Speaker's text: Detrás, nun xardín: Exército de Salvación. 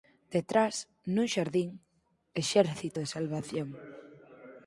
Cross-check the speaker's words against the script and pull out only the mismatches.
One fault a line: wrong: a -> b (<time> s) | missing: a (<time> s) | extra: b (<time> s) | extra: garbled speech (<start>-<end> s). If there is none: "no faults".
no faults